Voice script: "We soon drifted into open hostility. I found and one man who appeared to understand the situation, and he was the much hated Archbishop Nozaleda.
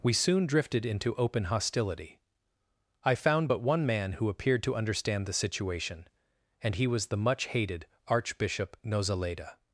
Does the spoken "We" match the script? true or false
true